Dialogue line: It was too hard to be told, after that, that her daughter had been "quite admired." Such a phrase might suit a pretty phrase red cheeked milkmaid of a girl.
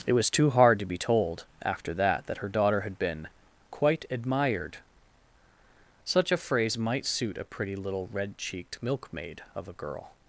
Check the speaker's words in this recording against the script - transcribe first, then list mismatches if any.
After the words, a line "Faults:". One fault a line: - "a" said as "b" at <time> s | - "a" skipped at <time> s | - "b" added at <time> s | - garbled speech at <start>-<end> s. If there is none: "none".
It was too hard to be told, after that, that her daughter had been "quite admired." Such a phrase might suit a pretty little red cheeked milkmaid of a girl.
Faults:
- "phrase" said as "little" at 7.7 s